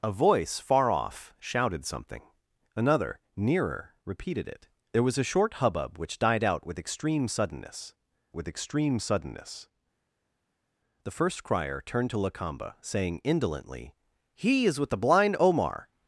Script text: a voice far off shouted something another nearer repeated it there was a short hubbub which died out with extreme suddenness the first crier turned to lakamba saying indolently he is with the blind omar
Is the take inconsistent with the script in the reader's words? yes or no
yes